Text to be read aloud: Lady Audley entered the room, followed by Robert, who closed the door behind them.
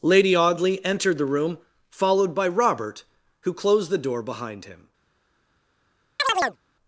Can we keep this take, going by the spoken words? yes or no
no